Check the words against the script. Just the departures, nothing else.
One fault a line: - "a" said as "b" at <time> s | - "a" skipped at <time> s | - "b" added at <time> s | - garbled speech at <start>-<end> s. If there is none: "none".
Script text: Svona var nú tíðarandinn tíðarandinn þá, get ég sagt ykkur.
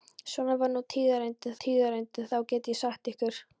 none